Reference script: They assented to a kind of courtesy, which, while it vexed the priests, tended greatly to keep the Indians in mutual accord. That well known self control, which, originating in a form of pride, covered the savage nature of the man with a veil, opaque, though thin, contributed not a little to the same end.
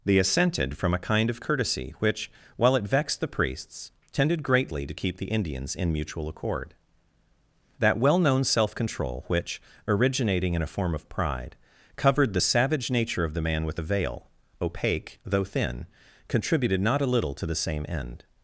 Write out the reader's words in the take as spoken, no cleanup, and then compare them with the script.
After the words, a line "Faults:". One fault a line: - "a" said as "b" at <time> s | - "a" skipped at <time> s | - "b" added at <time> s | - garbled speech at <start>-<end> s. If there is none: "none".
They assented from a kind of courtesy, which, while it vexed the priests, tended greatly to keep the Indians in mutual accord. That well known self control, which, originating in a form of pride, covered the savage nature of the man with a veil, opaque, though thin, contributed not a little to the same end.
Faults:
- "to" said as "from" at 0.8 s